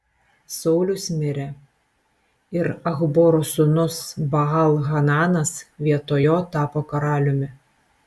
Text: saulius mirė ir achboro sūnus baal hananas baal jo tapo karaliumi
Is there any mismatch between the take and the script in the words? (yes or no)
yes